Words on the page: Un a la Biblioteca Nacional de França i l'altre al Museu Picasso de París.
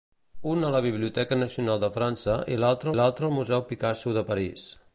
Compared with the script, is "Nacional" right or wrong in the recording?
right